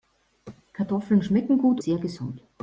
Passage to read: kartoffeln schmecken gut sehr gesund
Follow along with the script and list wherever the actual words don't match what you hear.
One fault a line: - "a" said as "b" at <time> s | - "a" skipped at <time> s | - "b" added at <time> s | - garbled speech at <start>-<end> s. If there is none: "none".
none